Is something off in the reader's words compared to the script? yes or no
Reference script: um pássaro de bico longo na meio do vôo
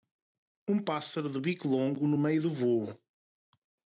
yes